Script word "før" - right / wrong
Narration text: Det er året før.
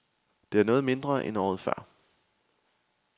right